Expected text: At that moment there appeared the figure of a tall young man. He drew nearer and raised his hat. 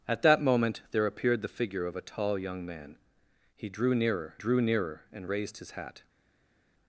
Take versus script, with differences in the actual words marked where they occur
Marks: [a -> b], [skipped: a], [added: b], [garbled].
At that moment there appeared the figure of a tall young man. He drew nearer [added: drew nearer] and raised his hat.